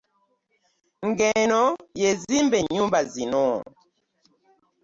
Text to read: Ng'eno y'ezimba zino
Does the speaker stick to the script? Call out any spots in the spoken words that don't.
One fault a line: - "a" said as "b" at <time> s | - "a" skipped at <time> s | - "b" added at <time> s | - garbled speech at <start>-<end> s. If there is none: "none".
- "ennyumba" added at 2.6 s